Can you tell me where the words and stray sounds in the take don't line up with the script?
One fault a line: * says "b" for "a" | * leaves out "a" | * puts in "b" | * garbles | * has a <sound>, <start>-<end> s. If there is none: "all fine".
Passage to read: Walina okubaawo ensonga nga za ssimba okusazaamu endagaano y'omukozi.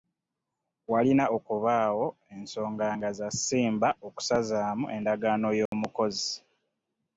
* has a dropout, 5.7-5.7 s